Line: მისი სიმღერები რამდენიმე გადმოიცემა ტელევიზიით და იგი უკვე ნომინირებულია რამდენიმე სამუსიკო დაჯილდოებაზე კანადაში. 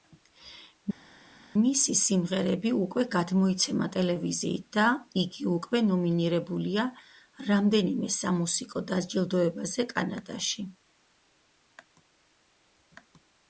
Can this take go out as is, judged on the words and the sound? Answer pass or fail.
fail